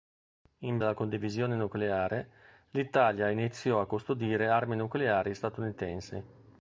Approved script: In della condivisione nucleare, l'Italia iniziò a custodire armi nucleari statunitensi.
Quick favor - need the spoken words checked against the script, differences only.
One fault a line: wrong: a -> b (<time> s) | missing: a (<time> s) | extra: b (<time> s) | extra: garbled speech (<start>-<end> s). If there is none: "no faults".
no faults